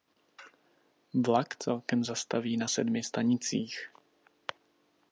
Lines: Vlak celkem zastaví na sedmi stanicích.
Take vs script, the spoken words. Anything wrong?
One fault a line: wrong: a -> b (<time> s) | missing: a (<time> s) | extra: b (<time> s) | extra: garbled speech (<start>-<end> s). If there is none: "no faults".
no faults